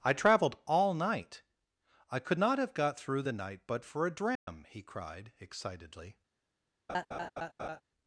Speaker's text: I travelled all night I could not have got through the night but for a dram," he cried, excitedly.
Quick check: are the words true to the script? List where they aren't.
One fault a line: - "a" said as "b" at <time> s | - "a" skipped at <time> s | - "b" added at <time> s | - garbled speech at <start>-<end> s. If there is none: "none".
none